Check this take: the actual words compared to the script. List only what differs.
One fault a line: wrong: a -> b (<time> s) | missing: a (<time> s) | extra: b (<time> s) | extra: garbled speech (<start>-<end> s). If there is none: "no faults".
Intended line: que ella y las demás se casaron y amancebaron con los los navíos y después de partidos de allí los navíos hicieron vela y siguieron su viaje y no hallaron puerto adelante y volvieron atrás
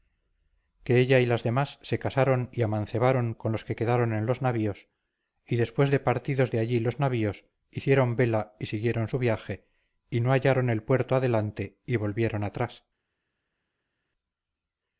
extra: que quedaron en (3.6 s)
extra: el (10.7 s)